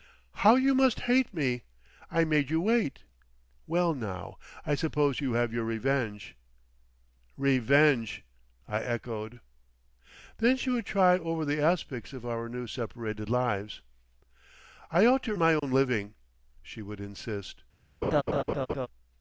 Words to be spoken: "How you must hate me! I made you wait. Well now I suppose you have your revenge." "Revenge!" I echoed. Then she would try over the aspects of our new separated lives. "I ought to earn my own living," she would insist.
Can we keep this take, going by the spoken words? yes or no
no